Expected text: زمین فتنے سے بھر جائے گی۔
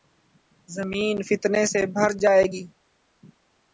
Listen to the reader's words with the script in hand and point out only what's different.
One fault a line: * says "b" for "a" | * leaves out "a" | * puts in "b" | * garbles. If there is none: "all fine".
all fine